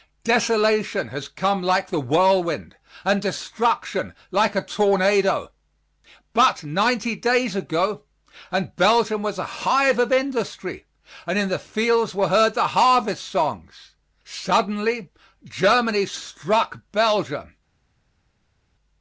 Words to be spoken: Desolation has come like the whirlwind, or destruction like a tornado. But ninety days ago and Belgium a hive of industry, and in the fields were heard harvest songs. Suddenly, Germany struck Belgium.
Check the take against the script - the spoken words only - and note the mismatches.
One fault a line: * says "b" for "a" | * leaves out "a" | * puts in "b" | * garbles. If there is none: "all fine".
* says "and" for "or"
* puts in "was"
* puts in "the"